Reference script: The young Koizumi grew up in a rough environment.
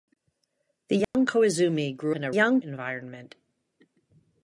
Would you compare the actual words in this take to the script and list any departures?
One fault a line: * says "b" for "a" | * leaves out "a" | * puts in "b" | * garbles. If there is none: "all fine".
* leaves out "up"
* says "young" for "rough"